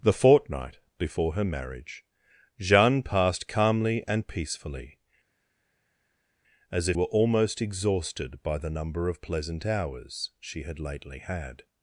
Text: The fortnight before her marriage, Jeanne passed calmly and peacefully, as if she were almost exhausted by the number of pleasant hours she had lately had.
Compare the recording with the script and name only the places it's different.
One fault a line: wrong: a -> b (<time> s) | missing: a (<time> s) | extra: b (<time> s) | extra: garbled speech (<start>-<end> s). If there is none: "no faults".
missing: she (7.0 s)